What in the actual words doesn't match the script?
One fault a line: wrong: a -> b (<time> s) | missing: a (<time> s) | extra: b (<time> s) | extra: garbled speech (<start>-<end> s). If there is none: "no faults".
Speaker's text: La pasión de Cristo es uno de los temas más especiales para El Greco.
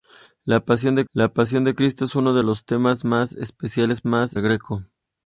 extra: la pasión de (1.1 s)
wrong: para -> más (4.1 s)